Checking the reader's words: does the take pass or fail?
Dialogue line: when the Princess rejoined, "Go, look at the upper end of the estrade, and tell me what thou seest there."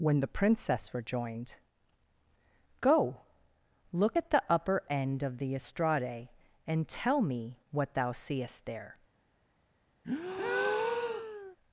pass